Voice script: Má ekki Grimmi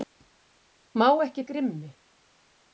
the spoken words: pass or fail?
pass